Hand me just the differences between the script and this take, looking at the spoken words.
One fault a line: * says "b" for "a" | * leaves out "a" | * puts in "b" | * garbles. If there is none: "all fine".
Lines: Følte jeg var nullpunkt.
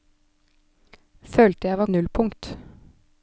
all fine